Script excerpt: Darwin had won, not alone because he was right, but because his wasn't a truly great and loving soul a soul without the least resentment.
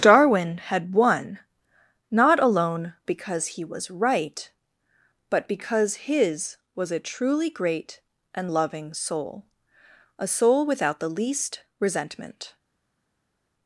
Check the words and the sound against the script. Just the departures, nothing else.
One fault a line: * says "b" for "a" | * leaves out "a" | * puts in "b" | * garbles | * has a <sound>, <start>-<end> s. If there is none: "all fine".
* says "was" for "wasn't"